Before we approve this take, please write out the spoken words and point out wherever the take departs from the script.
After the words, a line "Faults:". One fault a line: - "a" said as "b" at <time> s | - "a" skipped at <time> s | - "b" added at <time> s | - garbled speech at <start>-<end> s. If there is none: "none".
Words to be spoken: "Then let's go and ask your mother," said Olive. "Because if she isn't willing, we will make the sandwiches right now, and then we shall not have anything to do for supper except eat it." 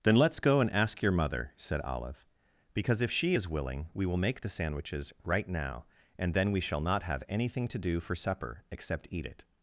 "Then let's go and ask your mother," said Olive. "Because if she is willing, we will make the sandwiches right now, and then we shall not have anything to do for supper except eat it."
Faults:
- "isn't" said as "is" at 3.3 s